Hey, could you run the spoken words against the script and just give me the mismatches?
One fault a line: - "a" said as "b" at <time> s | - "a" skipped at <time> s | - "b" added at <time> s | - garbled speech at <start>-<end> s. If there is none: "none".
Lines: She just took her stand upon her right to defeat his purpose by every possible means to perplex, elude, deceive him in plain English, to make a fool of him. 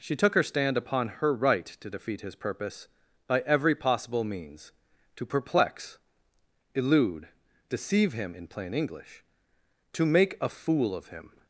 - "just" skipped at 0.1 s